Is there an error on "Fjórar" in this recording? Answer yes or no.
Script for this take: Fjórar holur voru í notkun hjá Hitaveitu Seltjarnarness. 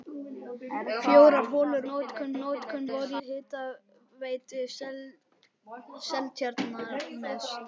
no